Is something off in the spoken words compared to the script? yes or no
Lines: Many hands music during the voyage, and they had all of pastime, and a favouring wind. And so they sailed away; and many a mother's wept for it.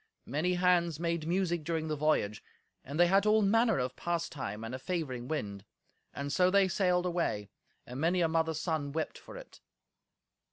yes